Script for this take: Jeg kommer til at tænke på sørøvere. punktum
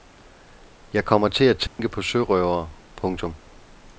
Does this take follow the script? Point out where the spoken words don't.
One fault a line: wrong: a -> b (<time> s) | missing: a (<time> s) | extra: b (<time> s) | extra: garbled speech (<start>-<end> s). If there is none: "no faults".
no faults